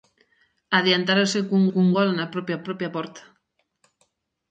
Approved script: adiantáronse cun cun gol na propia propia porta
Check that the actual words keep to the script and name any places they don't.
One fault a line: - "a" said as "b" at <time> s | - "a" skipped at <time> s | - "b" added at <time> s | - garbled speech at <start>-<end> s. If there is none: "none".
none